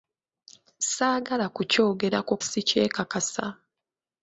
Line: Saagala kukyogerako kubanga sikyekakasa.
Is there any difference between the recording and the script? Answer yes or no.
yes